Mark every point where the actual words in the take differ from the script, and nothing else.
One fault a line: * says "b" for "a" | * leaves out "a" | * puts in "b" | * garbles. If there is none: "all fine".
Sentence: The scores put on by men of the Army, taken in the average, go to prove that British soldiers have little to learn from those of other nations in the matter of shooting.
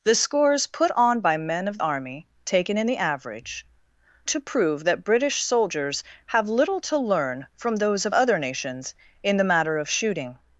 * leaves out "the"
* leaves out "go"